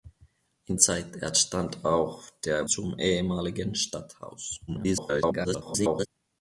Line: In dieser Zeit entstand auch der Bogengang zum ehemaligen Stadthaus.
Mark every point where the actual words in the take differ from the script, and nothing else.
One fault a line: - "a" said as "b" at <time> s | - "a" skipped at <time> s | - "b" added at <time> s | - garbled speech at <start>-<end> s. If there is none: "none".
- "dieser" skipped at 0.8 s
- "Bogengang" skipped at 2.6 s
- garbled speech at 4.7-6.1 s